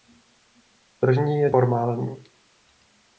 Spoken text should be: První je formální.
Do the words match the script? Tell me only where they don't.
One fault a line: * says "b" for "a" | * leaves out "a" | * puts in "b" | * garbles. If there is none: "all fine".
all fine